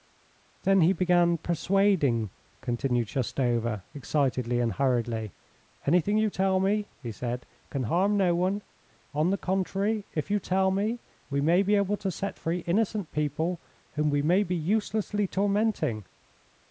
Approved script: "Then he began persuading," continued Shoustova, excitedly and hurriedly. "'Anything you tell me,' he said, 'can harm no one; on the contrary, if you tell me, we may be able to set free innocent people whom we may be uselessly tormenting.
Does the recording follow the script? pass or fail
pass